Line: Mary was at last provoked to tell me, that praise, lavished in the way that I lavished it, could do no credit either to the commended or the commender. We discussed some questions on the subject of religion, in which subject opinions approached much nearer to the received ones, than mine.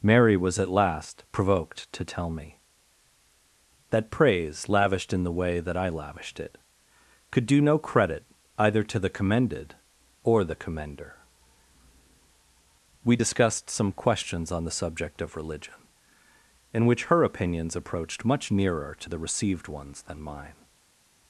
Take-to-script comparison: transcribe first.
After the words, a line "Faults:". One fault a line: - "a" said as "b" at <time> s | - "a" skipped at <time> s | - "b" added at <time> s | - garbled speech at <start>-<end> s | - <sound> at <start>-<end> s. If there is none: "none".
Mary was at last provoked to tell me, that praise, lavished in the way that I lavished it, could do no credit either to the commended or the commender. We discussed some questions on the subject of religion, in which her opinions approached much nearer to the received ones, than mine.
Faults:
- "subject" said as "her" at 17.0 s